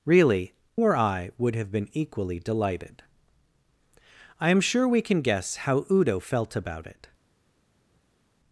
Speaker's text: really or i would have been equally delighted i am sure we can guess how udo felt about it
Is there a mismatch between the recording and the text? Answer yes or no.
no